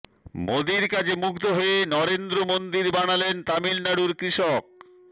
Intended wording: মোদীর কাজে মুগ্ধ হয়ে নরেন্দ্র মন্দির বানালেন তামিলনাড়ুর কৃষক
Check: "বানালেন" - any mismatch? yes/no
no